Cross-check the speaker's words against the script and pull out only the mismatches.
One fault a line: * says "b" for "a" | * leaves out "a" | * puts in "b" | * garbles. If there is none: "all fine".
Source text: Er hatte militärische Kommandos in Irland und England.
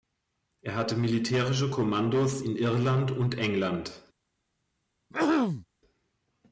all fine